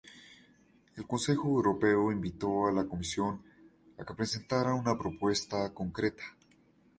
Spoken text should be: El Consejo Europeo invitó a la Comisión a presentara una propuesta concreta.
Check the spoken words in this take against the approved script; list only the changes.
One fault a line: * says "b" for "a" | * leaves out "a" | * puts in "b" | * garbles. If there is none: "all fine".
* puts in "que"